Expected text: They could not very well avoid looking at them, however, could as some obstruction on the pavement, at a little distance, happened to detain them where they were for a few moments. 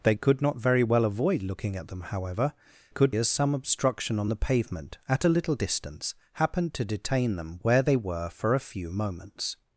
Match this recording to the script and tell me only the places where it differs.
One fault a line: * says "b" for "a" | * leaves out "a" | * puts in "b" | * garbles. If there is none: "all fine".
all fine